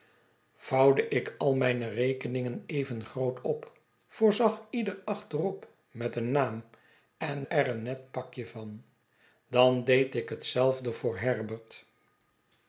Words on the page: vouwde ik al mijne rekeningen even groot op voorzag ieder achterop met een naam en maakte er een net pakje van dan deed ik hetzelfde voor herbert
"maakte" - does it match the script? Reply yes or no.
no